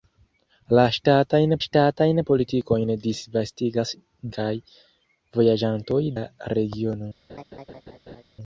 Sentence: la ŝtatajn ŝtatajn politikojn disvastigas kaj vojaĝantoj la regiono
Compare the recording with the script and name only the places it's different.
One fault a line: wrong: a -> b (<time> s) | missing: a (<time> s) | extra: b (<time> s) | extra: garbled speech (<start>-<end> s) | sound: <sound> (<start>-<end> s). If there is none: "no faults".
sound: laugh (7.3-8.2 s)